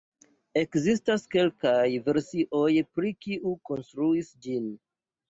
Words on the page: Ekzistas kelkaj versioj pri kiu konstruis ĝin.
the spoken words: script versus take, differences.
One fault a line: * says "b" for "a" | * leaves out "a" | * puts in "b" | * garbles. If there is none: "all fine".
all fine